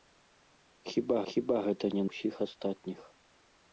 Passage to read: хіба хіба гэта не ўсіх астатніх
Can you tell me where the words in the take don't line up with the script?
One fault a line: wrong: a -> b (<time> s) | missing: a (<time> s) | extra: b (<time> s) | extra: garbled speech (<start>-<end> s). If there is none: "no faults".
no faults